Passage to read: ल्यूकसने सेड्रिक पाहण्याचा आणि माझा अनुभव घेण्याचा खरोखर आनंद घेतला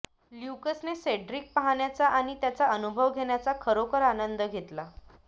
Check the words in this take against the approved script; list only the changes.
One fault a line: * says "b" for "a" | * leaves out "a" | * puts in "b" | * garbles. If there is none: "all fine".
* says "त्याचा" for "माझा"